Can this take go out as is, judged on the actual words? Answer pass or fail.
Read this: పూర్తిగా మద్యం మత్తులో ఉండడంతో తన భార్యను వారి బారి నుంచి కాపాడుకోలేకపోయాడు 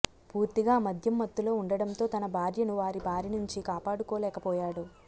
pass